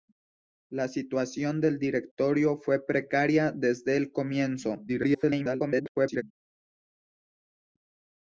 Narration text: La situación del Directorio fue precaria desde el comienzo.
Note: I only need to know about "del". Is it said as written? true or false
true